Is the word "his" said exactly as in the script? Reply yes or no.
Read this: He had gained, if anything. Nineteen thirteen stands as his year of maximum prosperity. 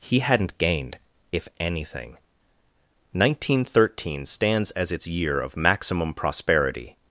no